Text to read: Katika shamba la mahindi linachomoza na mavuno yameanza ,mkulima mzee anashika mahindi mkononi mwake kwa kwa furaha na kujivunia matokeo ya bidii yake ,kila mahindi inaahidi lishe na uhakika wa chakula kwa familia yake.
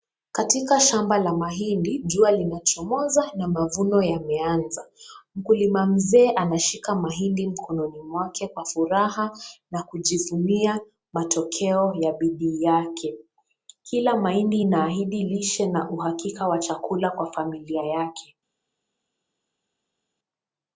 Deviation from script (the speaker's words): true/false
true